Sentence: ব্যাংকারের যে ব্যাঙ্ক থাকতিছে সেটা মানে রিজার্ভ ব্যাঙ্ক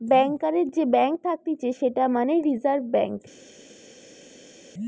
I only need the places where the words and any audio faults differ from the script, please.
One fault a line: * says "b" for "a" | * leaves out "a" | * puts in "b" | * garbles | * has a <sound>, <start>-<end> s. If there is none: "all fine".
all fine